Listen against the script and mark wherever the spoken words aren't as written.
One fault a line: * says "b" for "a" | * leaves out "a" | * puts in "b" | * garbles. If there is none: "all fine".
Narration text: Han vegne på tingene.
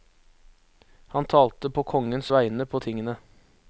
* puts in "talte på kongens"